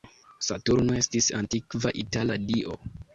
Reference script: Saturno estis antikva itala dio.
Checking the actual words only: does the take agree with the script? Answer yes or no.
yes